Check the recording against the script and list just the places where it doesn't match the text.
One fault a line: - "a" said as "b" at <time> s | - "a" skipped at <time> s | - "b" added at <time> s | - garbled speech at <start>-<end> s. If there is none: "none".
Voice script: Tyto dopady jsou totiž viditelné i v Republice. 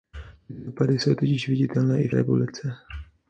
none